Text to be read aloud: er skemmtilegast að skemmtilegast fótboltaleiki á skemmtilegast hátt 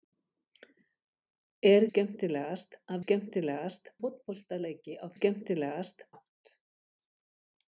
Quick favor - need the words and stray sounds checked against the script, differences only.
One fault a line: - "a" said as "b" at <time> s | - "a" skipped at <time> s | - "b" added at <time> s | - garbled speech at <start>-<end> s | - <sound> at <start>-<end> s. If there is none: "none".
none